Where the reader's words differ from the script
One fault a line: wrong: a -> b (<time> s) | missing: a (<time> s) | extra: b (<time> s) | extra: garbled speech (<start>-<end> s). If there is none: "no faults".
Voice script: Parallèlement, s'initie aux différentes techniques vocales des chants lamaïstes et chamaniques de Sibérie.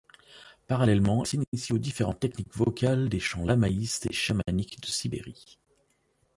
no faults